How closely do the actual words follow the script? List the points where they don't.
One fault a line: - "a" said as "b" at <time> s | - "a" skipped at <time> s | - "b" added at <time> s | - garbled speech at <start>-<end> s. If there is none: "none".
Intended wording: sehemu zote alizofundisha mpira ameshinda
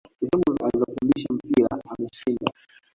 - "zote" skipped at 0.6 s